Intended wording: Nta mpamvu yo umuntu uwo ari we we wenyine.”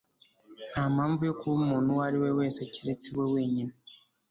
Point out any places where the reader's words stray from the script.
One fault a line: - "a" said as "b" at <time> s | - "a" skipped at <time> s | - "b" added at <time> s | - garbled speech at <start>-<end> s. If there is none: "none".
- "kuba" added at 1.4 s
- "wese keretse" added at 2.4 s